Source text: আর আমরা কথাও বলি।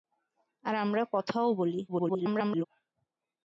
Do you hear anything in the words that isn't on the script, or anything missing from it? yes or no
yes